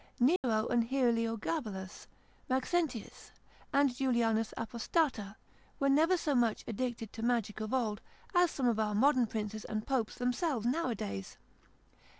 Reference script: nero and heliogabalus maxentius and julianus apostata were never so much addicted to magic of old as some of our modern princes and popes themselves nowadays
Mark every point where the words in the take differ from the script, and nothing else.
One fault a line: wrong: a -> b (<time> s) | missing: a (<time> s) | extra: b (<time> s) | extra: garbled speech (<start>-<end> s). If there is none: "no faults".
no faults